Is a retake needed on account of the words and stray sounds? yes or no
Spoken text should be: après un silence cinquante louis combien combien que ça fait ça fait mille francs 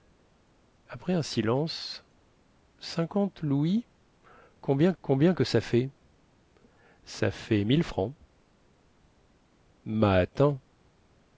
no